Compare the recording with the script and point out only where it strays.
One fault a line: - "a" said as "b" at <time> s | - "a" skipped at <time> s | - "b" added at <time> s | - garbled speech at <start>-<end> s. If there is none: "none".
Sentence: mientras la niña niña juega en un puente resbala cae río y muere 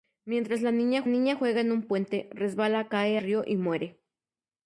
none